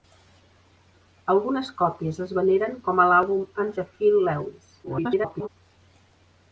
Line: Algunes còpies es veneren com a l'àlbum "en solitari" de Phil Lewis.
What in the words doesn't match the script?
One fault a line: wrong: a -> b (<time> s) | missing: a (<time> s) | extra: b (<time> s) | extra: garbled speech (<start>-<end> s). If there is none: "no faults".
missing: solitari (3.7 s)
extra: garbled speech (4.8-5.5 s)